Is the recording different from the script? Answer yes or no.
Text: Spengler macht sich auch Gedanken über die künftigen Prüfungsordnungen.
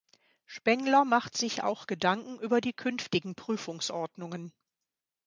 no